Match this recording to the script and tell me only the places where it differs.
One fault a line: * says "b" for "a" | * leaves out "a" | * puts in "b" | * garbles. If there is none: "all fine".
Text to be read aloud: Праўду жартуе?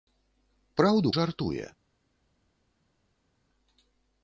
all fine